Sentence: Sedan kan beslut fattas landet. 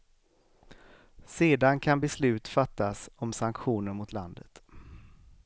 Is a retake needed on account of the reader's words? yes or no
yes